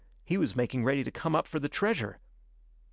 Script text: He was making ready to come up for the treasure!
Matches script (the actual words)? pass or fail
pass